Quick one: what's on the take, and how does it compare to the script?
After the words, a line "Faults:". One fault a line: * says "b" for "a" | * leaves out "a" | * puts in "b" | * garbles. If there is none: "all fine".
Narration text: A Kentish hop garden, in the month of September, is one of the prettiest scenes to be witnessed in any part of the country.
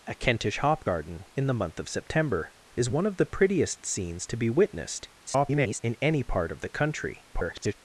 A Kentish hop garden, in the month of September, is one of the prettiest scenes to be witnessed [garbled] in any part of the country. [garbled]
Faults:
* garbles
* garbles